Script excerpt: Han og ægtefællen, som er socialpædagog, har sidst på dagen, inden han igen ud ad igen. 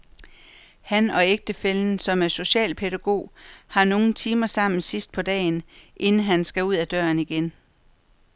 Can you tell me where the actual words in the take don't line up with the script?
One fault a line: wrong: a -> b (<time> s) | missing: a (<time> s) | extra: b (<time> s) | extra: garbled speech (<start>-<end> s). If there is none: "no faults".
extra: nogle timer sammen (3.8 s)
wrong: igen -> skal (6.4 s)
extra: døren (6.9 s)